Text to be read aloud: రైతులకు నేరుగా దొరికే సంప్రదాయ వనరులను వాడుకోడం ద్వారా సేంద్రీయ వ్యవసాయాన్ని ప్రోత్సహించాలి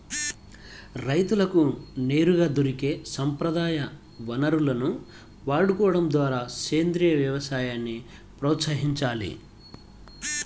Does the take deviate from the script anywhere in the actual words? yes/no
no